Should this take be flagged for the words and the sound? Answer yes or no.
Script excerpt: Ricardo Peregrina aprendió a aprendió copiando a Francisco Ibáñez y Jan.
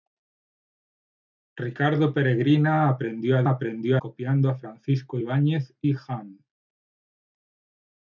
no